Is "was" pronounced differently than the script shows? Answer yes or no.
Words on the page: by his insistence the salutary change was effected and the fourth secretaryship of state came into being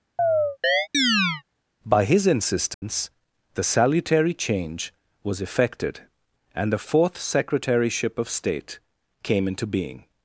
no